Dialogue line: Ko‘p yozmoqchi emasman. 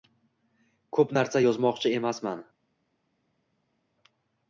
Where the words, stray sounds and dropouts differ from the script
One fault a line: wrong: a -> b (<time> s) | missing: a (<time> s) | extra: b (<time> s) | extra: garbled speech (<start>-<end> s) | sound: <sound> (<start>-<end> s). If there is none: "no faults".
extra: narsa (1.2 s)